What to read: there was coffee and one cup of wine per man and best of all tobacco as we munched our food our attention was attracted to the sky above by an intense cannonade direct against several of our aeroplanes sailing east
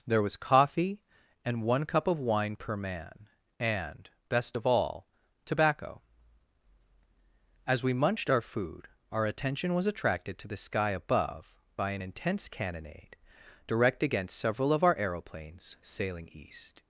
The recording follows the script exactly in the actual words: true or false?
true